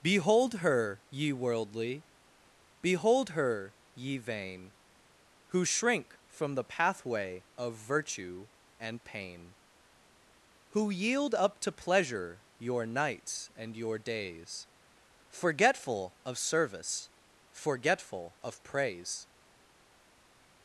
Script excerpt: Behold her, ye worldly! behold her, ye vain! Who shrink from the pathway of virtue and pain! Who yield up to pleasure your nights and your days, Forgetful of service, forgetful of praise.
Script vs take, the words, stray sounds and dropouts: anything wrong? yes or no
no